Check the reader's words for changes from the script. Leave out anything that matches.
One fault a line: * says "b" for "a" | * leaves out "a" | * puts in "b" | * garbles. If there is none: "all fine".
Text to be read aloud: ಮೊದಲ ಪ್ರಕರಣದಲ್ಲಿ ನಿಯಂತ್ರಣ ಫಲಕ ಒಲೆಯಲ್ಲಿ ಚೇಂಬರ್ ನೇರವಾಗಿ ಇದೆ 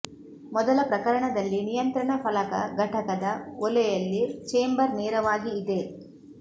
* puts in "ಘಟಕದ"